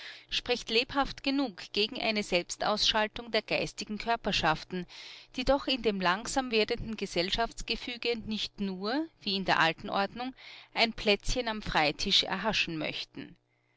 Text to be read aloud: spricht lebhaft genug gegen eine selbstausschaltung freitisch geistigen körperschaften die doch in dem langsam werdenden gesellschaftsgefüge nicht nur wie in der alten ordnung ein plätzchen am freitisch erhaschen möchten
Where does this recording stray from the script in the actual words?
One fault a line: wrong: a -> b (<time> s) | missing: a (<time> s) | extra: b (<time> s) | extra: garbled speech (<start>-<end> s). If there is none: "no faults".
wrong: freitisch -> der (3.3 s)